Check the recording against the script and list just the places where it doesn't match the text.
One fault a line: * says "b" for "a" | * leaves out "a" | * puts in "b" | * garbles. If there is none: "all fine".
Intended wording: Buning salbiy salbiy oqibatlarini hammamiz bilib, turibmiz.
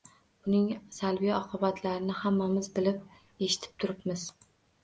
* leaves out "salbiy"
* puts in "eshitib"